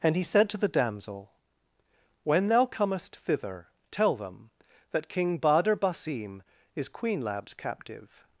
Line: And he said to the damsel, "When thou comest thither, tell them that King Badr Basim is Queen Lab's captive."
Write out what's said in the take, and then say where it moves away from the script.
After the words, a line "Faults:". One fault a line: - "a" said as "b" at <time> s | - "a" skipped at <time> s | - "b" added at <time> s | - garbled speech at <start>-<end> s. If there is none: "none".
And he said to the damsel, "When thou comest thither, tell them that King Badr Basim is Queen Lab's captive."
Faults:
none